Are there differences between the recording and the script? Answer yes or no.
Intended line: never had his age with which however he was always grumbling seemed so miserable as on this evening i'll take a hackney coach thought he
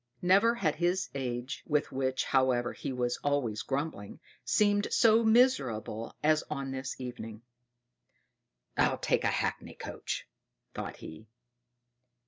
no